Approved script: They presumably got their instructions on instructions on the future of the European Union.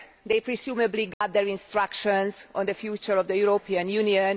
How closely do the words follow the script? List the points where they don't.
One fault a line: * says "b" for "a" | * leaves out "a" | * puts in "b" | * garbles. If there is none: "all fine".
* leaves out "instructions on"